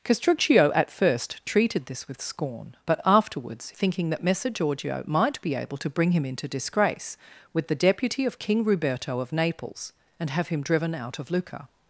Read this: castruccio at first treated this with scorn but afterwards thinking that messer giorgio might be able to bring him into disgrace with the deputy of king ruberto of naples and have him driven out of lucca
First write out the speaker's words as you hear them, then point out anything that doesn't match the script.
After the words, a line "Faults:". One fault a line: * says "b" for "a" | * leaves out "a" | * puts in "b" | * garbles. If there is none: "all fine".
castruccio at first treated this with scorn but afterwards thinking that messer giorgio might be able to bring him into disgrace with the deputy of king ruberto of naples and have him driven out of lucca
Faults:
all fine